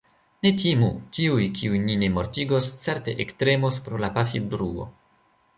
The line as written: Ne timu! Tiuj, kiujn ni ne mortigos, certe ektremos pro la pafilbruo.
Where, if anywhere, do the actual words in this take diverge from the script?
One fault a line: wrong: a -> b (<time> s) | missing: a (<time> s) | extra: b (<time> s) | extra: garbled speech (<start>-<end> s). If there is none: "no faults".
no faults